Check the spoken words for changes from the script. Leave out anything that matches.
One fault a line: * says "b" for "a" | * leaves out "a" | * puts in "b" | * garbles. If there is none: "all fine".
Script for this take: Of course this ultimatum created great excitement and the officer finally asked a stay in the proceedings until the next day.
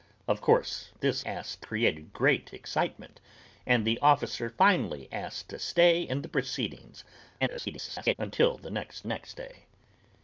* says "asked" for "ultimatum"
* garbles
* puts in "next"